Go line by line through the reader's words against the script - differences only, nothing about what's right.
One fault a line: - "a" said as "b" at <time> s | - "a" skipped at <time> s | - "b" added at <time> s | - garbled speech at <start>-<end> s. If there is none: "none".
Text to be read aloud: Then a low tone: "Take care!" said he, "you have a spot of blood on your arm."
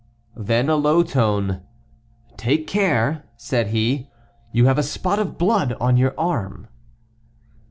none